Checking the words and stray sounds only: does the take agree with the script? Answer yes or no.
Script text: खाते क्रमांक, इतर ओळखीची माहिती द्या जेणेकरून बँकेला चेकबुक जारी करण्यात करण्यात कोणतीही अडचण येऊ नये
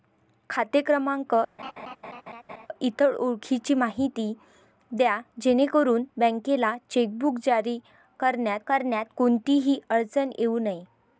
no